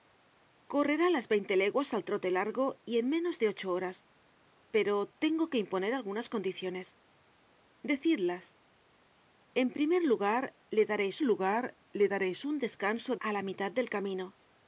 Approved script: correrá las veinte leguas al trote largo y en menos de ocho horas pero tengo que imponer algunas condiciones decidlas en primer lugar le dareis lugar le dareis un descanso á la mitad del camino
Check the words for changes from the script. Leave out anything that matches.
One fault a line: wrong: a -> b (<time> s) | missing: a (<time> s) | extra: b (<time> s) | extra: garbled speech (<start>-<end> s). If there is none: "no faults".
no faults